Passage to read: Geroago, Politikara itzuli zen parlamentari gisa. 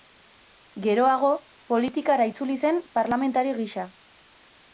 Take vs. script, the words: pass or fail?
pass